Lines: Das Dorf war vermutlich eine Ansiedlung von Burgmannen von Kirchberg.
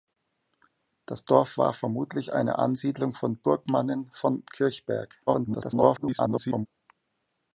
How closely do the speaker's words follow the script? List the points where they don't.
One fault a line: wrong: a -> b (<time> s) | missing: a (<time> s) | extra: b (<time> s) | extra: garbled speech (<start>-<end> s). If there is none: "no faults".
extra: garbled speech (5.3-6.7 s)